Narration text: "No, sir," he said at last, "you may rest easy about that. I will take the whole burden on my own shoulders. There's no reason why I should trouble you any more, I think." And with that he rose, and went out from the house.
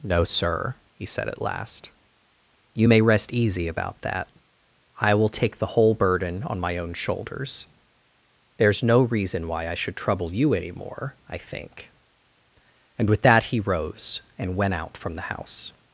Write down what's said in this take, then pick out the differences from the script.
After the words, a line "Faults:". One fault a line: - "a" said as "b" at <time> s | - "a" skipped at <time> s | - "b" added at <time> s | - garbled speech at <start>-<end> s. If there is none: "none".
"No, sir," he said at last, "you may rest easy about that. I will take the whole burden on my own shoulders. There's no reason why I should trouble you any more, I think." And with that he rose, and went out from the house.
Faults:
none